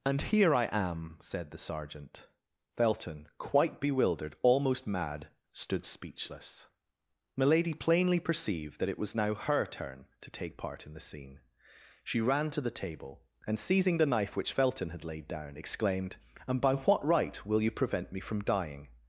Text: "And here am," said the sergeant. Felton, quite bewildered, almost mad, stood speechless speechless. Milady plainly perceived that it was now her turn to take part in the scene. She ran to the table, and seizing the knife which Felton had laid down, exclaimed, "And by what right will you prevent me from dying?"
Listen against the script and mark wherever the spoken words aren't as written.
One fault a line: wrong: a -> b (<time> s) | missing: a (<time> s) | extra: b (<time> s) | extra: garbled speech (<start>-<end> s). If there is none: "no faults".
extra: I (0.6 s)
missing: speechless (6.7 s)